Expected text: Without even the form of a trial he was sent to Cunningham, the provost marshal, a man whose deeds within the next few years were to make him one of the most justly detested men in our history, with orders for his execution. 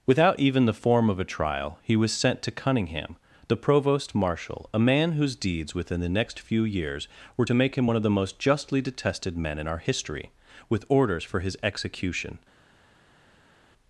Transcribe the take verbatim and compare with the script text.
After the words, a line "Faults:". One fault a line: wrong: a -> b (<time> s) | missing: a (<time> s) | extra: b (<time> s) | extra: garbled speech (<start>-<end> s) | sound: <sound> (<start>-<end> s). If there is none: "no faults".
Without even the form of a trial he was sent to Cunningham, the provost marshal, a man whose deeds within the next few years were to make him one of the most justly detested men in our history, with orders for his execution.
Faults:
no faults